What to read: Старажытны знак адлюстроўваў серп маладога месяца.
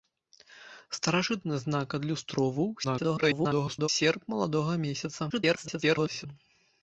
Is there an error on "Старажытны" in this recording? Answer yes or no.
no